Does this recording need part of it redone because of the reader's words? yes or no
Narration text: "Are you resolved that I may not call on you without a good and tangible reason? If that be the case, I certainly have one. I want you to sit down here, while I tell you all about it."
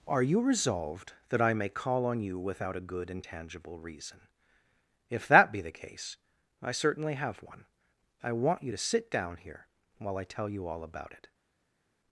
yes